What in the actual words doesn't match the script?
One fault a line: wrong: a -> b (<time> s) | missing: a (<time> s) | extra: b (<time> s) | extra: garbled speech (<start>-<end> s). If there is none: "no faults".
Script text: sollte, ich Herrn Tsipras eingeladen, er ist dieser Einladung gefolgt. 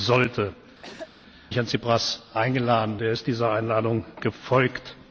no faults